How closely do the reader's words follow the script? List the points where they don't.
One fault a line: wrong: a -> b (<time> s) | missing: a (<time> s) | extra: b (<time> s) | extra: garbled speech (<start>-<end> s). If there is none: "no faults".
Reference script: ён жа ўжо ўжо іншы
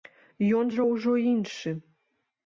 missing: ўжо (1.1 s)